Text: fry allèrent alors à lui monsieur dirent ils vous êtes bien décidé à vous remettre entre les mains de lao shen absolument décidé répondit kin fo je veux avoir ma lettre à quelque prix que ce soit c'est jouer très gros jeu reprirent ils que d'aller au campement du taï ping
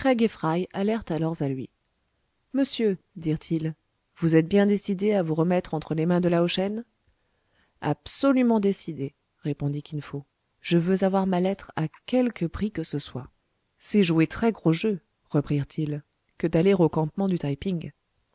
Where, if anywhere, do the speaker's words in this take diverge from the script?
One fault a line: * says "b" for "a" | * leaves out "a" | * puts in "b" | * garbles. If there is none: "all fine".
all fine